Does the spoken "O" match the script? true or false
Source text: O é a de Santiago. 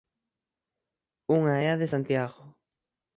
false